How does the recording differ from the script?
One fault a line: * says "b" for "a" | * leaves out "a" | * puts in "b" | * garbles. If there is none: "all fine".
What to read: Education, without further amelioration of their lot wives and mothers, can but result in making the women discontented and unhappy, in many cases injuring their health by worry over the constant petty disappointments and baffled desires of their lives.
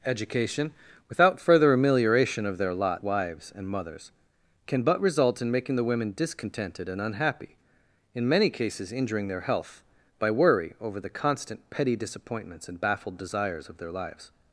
all fine